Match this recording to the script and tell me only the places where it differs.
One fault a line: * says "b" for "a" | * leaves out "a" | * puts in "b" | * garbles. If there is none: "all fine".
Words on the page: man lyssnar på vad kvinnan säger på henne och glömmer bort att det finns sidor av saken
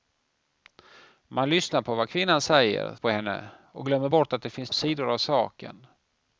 all fine